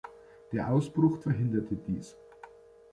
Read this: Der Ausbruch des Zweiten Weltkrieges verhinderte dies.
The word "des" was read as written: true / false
false